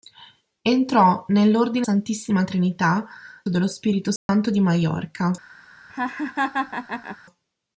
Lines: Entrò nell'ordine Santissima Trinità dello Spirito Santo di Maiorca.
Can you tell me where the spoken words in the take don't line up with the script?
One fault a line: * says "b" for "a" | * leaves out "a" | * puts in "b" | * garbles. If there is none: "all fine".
all fine